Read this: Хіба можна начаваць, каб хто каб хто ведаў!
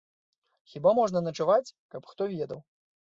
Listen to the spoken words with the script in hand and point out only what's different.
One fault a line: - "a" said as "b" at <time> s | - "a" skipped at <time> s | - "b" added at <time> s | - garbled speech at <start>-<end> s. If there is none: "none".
- "каб хто" skipped at 2.2 s